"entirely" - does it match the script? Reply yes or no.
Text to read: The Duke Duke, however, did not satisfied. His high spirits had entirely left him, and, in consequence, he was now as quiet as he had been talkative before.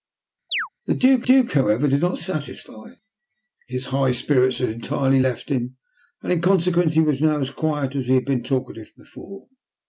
yes